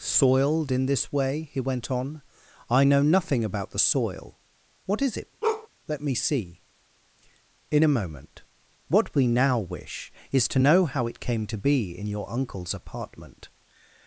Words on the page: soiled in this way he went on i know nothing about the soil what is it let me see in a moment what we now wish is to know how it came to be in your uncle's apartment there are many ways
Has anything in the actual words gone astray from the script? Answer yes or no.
yes